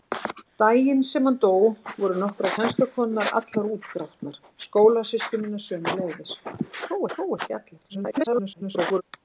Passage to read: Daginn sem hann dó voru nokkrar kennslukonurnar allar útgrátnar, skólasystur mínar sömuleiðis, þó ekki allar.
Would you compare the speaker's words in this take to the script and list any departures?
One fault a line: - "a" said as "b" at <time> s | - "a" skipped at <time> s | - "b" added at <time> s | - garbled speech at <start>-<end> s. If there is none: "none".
- "þó" added at 7.1 s
- garbled speech at 7.9-9.0 s